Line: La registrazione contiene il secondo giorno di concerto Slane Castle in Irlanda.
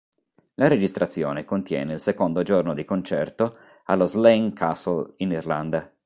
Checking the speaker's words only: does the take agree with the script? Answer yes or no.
no